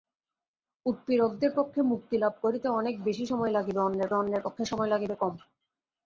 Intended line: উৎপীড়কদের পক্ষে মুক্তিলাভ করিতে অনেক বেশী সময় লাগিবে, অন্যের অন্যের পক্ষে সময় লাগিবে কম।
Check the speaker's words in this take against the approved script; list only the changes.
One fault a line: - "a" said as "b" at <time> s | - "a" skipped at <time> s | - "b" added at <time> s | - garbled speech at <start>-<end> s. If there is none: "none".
none